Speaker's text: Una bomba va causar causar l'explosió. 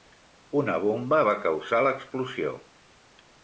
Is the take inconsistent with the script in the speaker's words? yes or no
yes